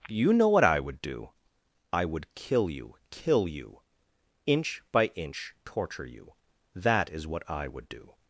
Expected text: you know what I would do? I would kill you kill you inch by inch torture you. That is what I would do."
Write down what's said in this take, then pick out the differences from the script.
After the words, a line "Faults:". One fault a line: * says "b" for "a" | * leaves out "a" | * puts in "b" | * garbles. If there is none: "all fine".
you know what I would do? I would kill you kill you inch by inch torture you. That is what I would do."
Faults:
all fine